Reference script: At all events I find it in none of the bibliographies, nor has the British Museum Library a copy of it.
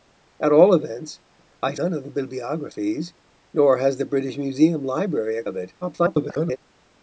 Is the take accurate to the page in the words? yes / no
no